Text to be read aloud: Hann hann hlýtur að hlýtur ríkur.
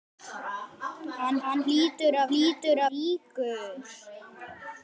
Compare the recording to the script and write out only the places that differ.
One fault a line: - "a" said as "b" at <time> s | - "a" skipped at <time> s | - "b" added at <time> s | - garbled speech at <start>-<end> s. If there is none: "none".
none